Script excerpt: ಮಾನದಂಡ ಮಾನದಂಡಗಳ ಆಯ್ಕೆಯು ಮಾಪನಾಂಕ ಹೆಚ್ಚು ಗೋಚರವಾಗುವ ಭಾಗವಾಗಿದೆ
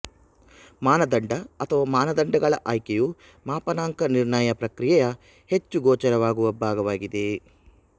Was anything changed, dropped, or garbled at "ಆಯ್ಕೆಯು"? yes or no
no